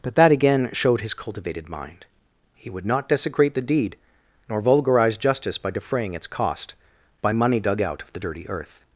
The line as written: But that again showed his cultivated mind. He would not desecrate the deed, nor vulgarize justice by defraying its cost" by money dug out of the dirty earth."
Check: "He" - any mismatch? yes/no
no